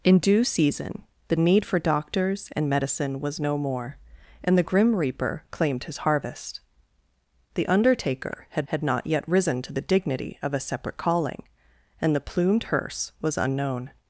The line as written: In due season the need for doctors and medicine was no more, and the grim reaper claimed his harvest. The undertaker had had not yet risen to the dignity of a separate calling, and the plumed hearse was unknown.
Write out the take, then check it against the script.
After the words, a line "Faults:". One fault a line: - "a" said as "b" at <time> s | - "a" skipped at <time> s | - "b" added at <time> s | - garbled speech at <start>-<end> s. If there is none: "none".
In due season the need for doctors and medicine was no more, and the grim reaper claimed his harvest. The undertaker had had not yet risen to the dignity of a separate calling, and the plumed hearse was unknown.
Faults:
none